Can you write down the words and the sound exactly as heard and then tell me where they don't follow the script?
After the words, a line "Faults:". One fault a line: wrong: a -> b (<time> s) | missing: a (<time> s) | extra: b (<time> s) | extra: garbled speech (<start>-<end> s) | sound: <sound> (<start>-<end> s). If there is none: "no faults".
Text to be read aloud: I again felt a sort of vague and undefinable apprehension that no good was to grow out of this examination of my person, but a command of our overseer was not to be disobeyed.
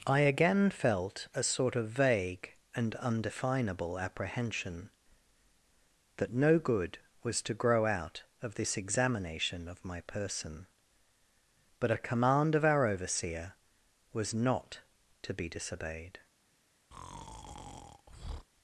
I again felt a sort of vague and undefinable apprehension that no good was to grow out of this examination of my person, but a command of our overseer was not to be disobeyed.
Faults:
sound: breath (16.9-18.5 s)